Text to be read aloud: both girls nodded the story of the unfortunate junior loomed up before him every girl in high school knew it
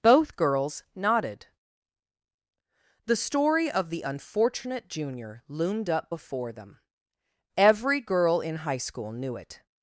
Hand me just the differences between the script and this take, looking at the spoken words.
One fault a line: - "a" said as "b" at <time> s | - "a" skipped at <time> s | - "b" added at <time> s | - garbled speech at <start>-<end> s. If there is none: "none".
- "him" said as "them" at 6.5 s